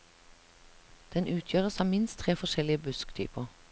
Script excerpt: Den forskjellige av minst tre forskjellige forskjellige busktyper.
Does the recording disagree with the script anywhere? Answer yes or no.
yes